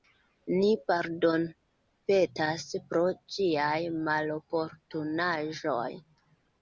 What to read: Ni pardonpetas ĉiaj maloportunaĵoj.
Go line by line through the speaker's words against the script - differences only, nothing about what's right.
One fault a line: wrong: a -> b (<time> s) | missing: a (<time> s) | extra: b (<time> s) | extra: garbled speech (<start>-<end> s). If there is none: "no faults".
extra: pro (2.9 s)